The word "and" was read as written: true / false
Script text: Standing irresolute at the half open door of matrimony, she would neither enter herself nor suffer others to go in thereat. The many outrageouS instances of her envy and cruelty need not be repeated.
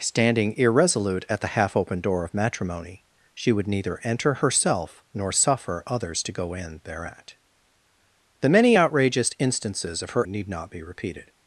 false